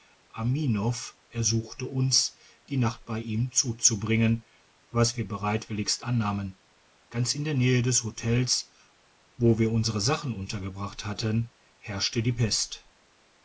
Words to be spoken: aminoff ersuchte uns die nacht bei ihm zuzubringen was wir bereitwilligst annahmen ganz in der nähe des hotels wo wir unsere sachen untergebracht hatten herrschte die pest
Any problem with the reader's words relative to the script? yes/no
no